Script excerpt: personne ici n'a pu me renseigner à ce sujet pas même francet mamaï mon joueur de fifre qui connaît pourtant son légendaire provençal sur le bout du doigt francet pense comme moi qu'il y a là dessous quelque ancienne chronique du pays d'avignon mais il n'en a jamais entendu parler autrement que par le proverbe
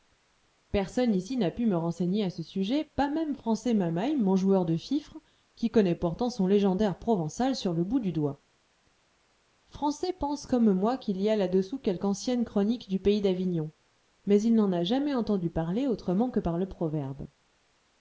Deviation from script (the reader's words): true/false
false